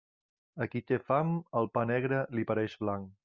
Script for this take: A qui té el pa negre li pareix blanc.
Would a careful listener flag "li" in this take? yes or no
no